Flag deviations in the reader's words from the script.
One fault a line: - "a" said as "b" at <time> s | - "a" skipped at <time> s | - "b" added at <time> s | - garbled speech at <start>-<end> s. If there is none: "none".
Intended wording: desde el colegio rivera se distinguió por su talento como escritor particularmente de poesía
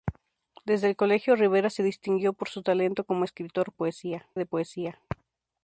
- "particularmente" said as "poesía" at 3.7 s